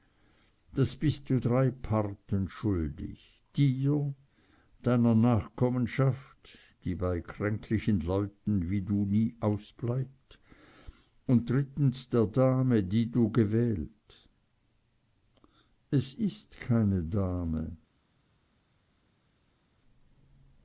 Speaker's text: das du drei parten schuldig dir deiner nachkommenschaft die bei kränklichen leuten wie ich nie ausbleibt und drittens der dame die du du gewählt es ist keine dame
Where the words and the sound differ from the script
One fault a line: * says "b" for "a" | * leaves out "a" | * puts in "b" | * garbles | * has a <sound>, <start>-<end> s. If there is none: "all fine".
* puts in "bist"
* says "du" for "ich"
* leaves out "du"